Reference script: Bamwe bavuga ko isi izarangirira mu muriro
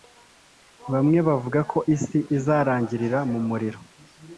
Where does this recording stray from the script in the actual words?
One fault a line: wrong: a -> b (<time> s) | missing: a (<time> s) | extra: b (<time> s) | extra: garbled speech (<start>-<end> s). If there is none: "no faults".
no faults